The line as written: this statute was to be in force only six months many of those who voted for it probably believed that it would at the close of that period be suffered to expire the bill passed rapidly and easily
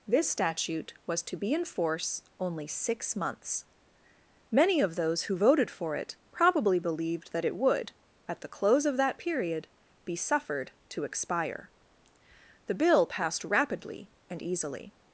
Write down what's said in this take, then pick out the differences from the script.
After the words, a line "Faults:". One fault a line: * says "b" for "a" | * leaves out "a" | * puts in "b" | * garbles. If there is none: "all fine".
this statute was to be in force only six months many of those who voted for it probably believed that it would at the close of that period be suffered to expire the bill passed rapidly and easily
Faults:
all fine